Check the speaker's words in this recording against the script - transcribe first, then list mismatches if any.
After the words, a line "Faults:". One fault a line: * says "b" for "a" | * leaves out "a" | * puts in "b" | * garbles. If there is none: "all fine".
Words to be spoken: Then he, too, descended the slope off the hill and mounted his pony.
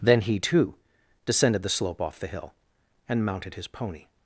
Then he, too, descended the slope off the hill and mounted his pony.
Faults:
all fine